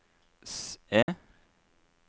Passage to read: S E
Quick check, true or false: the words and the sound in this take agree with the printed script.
false